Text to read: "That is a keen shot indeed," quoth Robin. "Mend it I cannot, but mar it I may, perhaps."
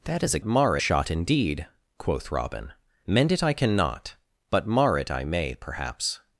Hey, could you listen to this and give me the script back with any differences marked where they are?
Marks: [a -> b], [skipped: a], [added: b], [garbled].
"That is a [keen -> mar] shot indeed," quoth Robin. "Mend it I cannot, but mar it I may, perhaps."